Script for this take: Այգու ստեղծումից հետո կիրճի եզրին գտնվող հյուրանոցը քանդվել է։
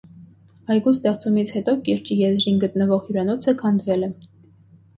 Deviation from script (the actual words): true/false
false